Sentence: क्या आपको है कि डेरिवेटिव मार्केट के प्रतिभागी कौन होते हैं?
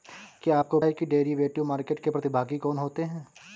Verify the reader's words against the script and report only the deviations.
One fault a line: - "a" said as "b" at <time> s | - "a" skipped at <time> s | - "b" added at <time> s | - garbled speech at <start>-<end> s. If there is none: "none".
none